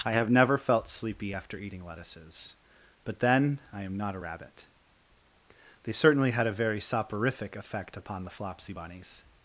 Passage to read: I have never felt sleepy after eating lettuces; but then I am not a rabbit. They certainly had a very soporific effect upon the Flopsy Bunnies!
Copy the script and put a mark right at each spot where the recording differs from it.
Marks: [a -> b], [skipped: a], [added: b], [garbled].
I have never felt sleepy after eating lettuces; but then I am not a rabbit. They certainly had a very soporific effect upon the Flopsy Bunnies!